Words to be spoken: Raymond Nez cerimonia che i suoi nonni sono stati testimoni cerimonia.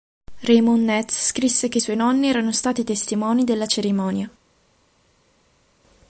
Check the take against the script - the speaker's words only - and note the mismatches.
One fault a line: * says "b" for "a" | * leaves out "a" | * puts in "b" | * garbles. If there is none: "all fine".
* says "scrisse" for "cerimonia"
* says "erano" for "sono"
* puts in "della"